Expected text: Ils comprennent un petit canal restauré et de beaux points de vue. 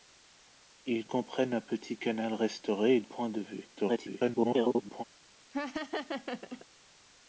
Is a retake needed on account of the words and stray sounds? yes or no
yes